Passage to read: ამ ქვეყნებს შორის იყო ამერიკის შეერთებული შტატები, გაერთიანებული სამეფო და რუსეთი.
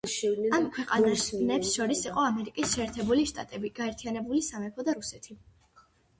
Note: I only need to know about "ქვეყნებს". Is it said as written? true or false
true